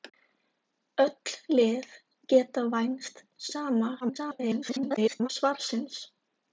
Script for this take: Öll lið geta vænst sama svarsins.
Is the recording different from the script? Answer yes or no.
yes